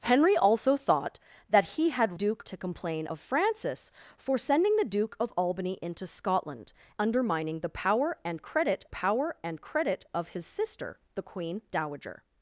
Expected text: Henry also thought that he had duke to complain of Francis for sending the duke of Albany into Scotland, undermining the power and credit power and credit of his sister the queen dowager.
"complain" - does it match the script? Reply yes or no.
yes